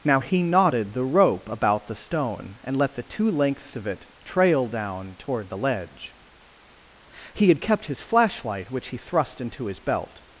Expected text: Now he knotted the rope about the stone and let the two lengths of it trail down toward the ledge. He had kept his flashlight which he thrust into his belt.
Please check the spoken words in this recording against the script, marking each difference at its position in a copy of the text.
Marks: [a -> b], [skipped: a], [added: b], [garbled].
Now he knotted the rope about the stone and let the two lengths of it trail down toward the ledge. He had kept his flashlight which he thrust into his belt.